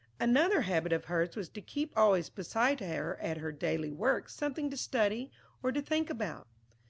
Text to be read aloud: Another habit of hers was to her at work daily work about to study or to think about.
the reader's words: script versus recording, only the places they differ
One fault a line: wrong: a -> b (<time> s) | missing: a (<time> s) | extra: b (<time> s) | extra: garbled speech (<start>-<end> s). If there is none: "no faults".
extra: keep always beside (1.6 s)
wrong: work -> her (3.4 s)
wrong: about -> something (4.3 s)